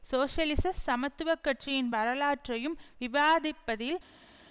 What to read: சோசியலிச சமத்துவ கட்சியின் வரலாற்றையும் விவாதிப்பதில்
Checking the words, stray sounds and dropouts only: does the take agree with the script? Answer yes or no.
yes